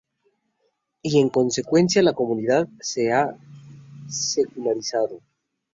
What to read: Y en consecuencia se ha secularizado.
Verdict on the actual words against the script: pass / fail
fail